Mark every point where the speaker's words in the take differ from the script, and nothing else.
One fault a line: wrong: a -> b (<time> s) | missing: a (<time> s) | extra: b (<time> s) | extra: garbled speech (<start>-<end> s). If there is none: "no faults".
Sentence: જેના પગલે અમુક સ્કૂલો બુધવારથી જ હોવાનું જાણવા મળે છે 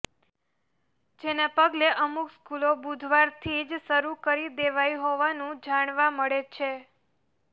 extra: શરૂ કરી દેવાઈ (3.8 s)